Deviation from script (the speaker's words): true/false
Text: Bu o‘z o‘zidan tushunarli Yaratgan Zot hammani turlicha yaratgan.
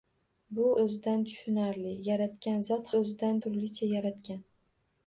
true